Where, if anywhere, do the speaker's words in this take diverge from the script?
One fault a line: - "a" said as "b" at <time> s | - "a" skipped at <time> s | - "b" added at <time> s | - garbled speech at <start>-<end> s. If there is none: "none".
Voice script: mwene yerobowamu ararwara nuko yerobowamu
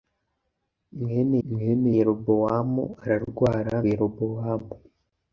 - "mwene" added at 1.5 s
- "nuko" skipped at 3.7 s